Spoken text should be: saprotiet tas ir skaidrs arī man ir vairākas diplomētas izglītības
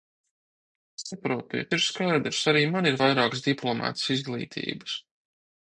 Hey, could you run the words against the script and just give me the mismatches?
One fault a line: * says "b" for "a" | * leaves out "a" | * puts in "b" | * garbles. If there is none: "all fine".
* leaves out "tas"